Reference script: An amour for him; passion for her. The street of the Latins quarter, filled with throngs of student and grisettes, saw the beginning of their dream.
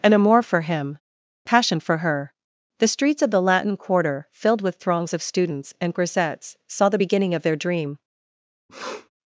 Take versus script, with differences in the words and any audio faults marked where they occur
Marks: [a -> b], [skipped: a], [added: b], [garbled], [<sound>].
An amour for him; passion for her. The [street -> streets] of the [Latins -> Latin] quarter, filled with throngs of [student -> students] and grisettes, saw the beginning of their dream. [sniff]